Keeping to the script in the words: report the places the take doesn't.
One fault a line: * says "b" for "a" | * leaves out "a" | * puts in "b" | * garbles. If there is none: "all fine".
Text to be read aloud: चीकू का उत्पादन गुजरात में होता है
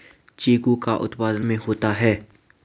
* leaves out "गुजरात"